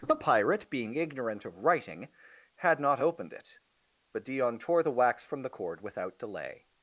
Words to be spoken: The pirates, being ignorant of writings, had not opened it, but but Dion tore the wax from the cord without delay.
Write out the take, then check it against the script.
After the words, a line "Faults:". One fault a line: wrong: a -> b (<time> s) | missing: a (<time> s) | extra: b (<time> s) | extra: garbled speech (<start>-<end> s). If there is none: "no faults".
The pirate, being ignorant of writing, had not opened it, but Dion tore the wax from the cord without delay.
Faults:
wrong: pirates -> pirate (0.1 s)
wrong: writings -> writing (1.6 s)
missing: but (4.2 s)